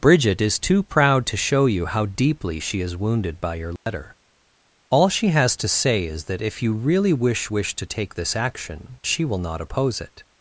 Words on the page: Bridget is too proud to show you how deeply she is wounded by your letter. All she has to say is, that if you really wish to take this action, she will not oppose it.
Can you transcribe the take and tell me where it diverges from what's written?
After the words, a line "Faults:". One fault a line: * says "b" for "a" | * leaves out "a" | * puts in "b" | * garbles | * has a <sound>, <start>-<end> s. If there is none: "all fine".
Bridget is too proud to show you how deeply she is wounded by your letter. All she has to say is, that if you really wish wish to take this action, she will not oppose it.
Faults:
* has a dropout, 3.8-3.9 s
* puts in "wish"